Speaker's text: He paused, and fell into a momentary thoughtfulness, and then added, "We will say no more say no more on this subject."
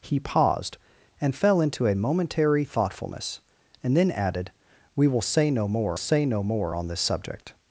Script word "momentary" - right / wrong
right